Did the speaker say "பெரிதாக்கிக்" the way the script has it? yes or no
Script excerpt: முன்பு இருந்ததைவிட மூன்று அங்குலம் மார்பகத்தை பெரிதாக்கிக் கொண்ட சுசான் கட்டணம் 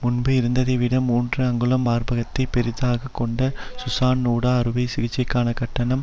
yes